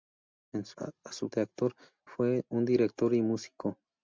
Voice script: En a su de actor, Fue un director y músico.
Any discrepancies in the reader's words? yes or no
no